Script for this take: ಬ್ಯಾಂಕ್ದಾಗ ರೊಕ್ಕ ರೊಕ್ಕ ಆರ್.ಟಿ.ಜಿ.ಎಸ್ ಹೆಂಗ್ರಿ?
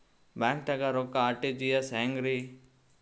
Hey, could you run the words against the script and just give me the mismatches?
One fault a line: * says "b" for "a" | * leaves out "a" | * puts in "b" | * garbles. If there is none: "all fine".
* leaves out "ರೊಕ್ಕ"